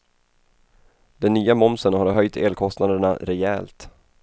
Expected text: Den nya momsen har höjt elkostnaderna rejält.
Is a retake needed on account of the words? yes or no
no